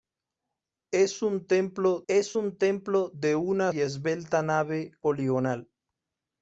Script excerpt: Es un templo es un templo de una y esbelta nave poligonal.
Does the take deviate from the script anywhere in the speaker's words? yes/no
no